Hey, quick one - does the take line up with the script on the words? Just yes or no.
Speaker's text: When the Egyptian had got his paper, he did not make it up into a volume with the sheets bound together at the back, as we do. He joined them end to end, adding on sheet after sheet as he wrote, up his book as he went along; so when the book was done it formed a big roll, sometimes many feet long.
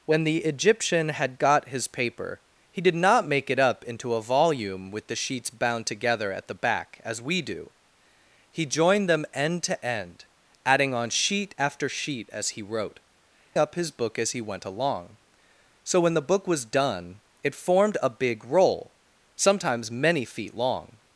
yes